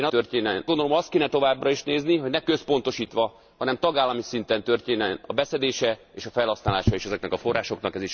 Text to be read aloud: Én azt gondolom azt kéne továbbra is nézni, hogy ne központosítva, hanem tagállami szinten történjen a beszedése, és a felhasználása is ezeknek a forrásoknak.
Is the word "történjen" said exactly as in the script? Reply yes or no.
yes